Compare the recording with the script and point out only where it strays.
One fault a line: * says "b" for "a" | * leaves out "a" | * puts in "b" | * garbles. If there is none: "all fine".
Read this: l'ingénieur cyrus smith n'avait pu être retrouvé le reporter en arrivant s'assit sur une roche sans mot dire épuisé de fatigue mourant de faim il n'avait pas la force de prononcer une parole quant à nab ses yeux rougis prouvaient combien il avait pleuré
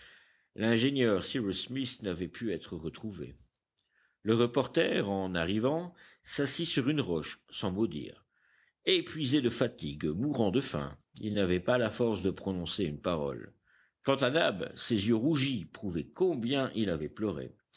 all fine